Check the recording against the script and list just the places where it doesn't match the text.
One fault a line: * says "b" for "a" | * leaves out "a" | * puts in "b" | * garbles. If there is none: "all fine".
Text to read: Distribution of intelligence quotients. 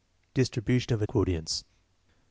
* leaves out "intelligence"